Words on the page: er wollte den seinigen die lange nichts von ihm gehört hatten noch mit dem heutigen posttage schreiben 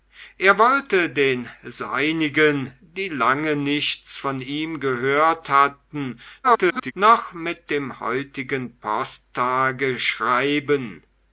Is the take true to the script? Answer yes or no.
no